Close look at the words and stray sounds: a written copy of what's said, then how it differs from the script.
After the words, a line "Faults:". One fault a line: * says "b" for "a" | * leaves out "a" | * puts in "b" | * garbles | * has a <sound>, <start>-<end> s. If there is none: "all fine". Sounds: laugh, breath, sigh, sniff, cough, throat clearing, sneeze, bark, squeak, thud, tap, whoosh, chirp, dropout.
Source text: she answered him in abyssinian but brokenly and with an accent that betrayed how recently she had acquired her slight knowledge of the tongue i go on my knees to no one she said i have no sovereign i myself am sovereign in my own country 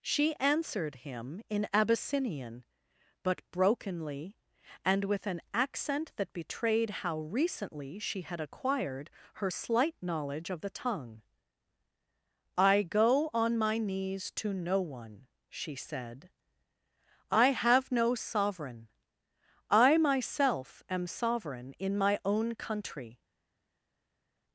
she answered him in abyssinian but brokenly and with an accent that betrayed how recently she had acquired her slight knowledge of the tongue i go on my knees to no one she said i have no sovereign i myself am sovereign in my own country
Faults:
all fine